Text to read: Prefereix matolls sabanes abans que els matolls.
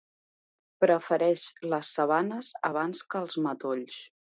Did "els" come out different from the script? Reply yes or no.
no